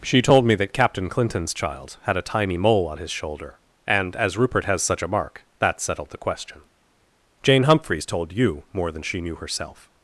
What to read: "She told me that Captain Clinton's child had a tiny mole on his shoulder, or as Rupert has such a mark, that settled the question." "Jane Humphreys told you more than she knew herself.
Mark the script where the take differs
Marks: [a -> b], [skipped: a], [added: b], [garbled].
"She told me that Captain Clinton's child had a tiny mole on his shoulder, [or -> and] as Rupert has such a mark, that settled the question." "Jane Humphreys told you more than she knew herself.